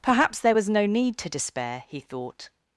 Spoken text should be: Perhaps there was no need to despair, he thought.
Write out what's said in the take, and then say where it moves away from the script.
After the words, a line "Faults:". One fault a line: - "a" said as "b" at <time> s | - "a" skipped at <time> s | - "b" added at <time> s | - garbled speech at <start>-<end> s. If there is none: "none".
Perhaps there was no need to despair, he thought.
Faults:
none